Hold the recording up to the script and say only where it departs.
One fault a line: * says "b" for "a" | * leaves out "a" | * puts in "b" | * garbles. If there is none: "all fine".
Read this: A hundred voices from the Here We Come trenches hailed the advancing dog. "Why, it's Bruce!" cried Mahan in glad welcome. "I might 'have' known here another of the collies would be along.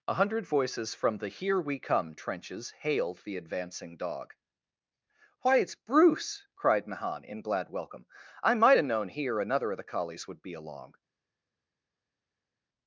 all fine